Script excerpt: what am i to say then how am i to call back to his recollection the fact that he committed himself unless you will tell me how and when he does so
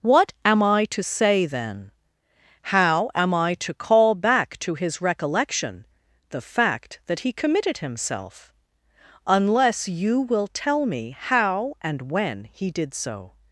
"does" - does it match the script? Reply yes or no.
no